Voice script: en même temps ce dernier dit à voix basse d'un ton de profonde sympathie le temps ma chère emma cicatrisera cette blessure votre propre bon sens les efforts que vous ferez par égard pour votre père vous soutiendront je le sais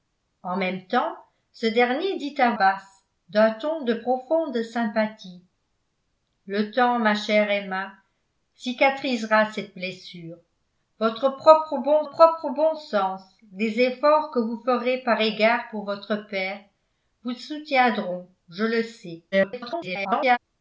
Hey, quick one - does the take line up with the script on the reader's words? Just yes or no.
no